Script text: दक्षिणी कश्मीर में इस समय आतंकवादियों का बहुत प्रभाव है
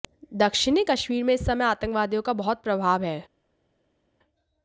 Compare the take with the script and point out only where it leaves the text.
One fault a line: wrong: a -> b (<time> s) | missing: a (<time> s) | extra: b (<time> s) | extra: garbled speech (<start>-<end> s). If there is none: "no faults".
no faults